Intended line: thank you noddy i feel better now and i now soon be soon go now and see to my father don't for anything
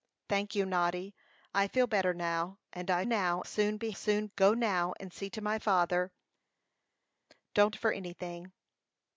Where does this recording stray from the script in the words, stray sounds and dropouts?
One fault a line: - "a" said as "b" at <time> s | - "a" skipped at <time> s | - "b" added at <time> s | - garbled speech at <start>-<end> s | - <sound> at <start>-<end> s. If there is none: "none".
none